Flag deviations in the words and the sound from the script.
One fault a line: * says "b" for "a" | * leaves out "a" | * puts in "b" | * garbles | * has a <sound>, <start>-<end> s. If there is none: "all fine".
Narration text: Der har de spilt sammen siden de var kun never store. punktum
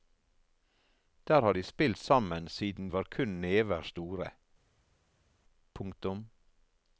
* leaves out "de"